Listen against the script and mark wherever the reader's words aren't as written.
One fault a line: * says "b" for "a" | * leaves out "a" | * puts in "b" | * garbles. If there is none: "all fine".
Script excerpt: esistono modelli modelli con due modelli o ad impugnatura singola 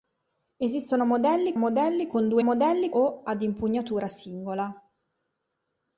all fine